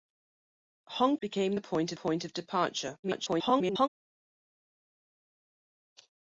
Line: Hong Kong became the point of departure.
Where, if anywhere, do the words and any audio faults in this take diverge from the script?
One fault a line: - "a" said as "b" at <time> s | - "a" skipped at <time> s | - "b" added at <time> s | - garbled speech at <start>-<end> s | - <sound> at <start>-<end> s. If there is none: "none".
- "Kong" skipped at 1.2 s
- "point" added at 1.9 s
- garbled speech at 3.0-3.9 s